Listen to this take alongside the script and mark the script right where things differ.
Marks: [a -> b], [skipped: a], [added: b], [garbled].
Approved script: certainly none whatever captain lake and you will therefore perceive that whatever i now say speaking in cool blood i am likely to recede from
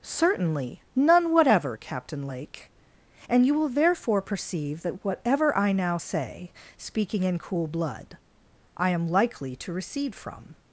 certainly none whatever captain lake and you will therefore perceive that whatever i now say speaking in cool blood i am likely to recede from